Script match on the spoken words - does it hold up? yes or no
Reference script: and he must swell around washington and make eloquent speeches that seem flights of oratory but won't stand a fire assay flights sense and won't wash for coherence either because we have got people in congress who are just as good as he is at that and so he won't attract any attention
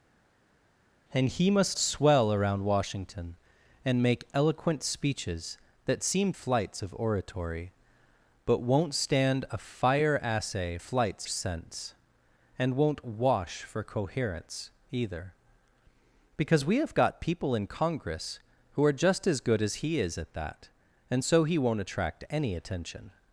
yes